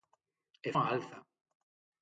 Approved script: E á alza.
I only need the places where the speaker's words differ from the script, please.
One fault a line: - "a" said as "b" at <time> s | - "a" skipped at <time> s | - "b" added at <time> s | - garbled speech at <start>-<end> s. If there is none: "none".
none